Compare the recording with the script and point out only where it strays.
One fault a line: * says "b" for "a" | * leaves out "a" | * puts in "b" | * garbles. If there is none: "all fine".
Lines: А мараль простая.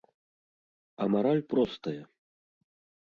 all fine